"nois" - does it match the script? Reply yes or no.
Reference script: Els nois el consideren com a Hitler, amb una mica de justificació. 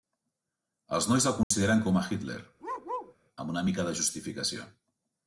yes